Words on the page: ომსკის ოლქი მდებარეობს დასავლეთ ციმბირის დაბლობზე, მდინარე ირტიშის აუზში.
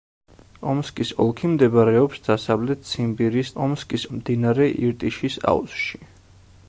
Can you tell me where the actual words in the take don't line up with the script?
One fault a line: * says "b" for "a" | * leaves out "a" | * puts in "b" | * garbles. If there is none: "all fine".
* says "ომსკის" for "დაბლობზე"